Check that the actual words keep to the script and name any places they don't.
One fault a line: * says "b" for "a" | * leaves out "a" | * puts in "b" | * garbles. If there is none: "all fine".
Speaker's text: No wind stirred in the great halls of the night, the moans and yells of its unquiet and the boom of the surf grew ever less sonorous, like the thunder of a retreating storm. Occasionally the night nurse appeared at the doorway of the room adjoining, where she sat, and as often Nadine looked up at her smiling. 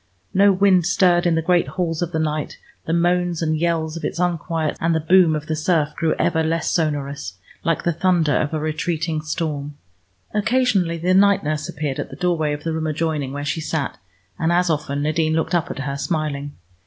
all fine